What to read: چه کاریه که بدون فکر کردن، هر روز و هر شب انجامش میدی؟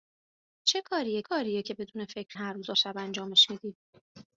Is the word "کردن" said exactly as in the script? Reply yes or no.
no